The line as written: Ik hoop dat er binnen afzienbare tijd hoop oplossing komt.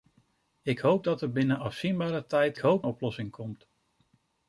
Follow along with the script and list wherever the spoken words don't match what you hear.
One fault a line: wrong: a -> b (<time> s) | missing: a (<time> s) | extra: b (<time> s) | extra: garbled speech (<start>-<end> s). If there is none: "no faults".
no faults